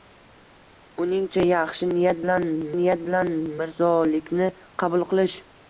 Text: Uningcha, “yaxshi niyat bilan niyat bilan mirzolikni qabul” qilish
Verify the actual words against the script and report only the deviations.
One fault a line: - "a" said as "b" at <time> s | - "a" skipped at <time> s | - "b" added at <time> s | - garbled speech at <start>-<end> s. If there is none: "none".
none